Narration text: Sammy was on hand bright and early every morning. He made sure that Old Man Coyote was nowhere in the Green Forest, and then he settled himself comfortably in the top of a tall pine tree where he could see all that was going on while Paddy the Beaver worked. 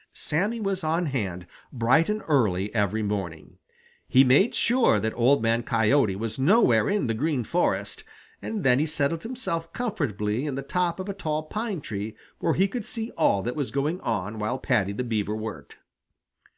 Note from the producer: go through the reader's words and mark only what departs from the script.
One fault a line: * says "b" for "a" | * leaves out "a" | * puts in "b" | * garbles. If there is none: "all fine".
all fine